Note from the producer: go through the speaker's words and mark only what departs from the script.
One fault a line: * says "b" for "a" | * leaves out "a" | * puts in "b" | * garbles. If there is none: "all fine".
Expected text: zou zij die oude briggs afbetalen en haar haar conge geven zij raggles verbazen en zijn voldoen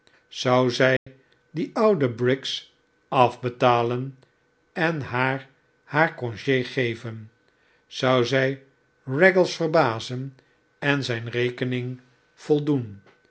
* puts in "zou"
* puts in "rekening"